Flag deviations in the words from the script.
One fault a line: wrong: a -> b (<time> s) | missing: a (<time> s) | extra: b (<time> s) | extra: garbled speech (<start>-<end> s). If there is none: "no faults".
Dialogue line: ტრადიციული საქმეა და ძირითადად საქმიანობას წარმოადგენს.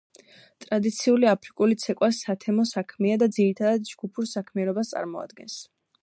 extra: აფრიკული ცეკვა სათემო (1.3 s)
extra: ჯგუფურ (3.9 s)